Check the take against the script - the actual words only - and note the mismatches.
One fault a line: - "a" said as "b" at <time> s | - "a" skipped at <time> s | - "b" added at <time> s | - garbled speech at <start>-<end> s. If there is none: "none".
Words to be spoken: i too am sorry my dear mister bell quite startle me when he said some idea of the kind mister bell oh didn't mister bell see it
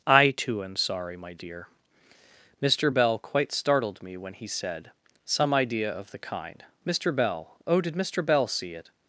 - "startle" said as "startled" at 3.5 s
- "didn't" said as "did" at 7.8 s